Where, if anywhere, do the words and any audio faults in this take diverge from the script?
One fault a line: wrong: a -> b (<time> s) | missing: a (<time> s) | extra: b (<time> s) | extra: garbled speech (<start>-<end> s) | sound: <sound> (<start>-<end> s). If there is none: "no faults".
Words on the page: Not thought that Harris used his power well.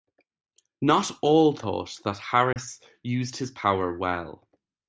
extra: all (1.2 s)
sound: dropout (2.5-2.6 s)